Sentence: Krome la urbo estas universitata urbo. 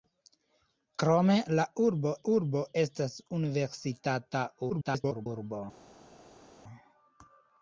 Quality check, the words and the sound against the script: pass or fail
fail